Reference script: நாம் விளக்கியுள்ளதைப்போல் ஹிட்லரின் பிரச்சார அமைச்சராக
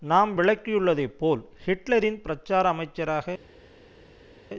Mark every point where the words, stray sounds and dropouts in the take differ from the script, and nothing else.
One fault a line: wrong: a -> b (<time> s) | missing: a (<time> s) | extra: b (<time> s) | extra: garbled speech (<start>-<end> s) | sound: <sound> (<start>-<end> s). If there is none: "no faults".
no faults